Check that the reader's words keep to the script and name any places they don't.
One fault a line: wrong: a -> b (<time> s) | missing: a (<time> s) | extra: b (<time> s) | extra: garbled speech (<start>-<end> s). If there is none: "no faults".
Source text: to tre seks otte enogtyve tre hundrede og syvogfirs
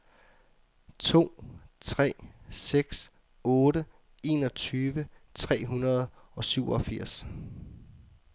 no faults